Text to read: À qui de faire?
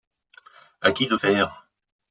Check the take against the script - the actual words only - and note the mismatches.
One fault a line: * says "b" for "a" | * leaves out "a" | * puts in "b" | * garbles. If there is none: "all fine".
all fine